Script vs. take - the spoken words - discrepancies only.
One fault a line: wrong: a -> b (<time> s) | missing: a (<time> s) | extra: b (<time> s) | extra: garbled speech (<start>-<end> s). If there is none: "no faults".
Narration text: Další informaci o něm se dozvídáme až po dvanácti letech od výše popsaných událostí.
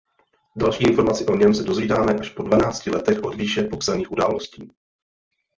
no faults